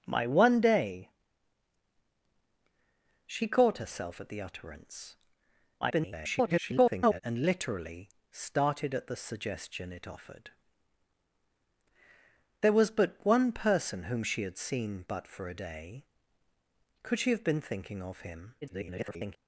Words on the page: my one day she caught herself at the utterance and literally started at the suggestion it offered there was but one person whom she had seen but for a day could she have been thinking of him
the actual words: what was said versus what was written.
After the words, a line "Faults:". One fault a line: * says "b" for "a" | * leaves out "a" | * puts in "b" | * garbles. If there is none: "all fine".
my one day she caught herself at the utterance [garbled] and literally started at the suggestion it offered there was but one person whom she had seen but for a day could she have been thinking of him [garbled]
Faults:
* garbles
* garbles